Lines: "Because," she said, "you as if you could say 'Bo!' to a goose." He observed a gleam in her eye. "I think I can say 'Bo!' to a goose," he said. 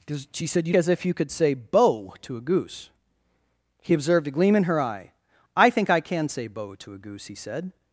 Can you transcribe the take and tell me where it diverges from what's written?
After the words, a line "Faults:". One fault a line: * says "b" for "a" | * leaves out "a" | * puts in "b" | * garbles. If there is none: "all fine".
"Because," she said, "you as if you could say 'Bo!' to a goose." He observed a gleam in her eye. "I think I can say 'Bo!' to a goose," he said.
Faults:
all fine